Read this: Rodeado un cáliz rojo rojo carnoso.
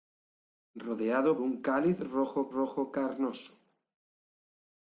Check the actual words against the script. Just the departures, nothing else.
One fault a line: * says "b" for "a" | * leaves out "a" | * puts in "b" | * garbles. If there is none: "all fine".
all fine